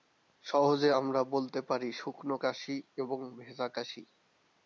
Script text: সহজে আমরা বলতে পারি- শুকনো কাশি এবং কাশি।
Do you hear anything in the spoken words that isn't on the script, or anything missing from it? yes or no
yes